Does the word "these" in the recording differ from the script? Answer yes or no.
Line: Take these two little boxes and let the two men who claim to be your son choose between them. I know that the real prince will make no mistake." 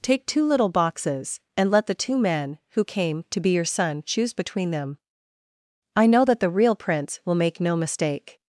yes